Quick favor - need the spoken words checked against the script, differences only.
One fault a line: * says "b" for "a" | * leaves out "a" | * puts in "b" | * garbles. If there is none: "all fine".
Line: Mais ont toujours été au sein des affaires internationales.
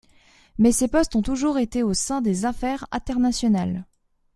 * puts in "ses postes"